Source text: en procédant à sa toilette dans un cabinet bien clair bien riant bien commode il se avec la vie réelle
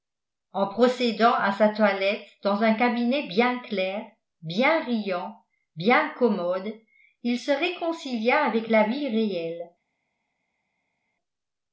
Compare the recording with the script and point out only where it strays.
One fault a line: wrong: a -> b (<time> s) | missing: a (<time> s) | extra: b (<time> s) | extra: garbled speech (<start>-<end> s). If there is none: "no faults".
extra: réconcilia (7.5 s)